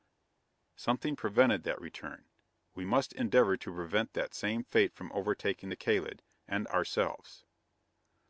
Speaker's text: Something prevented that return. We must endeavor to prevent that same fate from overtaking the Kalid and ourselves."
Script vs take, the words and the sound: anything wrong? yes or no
no